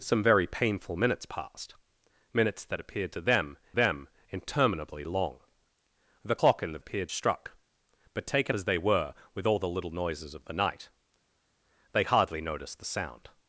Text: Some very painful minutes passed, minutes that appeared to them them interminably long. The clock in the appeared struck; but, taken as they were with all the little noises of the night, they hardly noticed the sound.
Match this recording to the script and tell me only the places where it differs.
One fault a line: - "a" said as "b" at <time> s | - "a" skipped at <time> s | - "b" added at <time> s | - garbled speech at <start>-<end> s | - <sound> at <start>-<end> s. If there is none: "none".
none